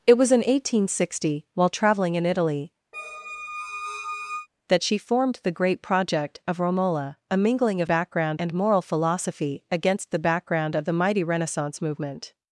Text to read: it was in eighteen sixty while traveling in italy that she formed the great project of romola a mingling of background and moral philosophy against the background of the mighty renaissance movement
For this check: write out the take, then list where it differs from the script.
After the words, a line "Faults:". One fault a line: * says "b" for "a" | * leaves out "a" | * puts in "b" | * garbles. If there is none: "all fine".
it was in eighteen sixty while traveling in italy that she formed the great project of romola a mingling of background and moral philosophy against the background of the mighty renaissance movement
Faults:
all fine